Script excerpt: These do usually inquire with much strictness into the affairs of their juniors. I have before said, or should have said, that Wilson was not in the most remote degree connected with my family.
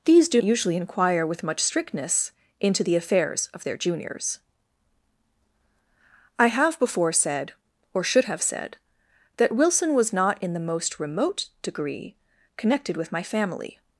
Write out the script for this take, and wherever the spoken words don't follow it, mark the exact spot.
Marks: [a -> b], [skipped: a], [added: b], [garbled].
These do usually inquire with much strictness into the affairs of their juniors. I have before said, or should have said, that Wilson was not in the most remote degree connected with my family.